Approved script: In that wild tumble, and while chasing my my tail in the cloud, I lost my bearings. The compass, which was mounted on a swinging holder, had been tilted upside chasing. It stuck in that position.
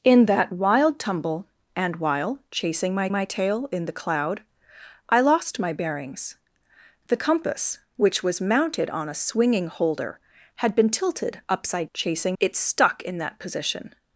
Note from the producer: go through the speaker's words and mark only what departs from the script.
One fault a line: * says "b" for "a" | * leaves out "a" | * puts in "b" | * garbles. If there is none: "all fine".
all fine